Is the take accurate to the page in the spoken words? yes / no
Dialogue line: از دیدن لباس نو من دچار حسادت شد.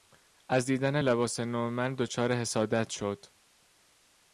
yes